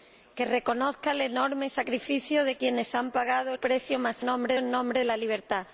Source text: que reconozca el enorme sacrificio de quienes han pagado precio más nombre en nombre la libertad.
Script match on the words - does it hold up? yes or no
yes